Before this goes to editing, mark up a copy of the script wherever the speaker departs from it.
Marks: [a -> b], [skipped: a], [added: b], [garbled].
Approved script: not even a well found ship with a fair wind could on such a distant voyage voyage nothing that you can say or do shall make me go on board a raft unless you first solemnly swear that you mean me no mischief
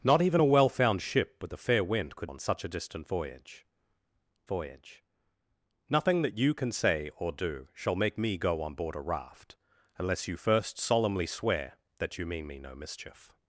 not even a well found ship with a fair wind could on such a distant voyage voyage nothing that you can say or do shall make me go on board a raft unless you first solemnly swear that you mean me no mischief